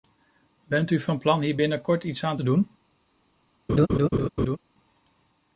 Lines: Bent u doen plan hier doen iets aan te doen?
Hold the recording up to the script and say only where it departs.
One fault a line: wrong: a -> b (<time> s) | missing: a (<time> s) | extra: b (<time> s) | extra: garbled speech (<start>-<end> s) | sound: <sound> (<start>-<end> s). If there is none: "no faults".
wrong: doen -> van (1.0 s)
wrong: doen -> binnenkort (1.5 s)
sound: laugh (3.7-4.6 s)